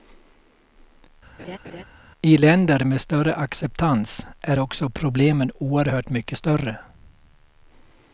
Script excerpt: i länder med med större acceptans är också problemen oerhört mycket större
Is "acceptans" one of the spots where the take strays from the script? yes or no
no